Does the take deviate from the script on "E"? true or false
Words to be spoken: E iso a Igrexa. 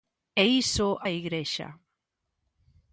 false